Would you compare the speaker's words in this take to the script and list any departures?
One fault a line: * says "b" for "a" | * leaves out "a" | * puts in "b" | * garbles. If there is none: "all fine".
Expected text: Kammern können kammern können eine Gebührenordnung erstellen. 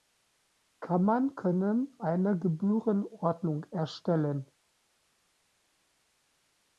* leaves out "kammern können"